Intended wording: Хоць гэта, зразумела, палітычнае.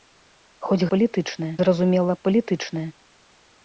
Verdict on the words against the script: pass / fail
fail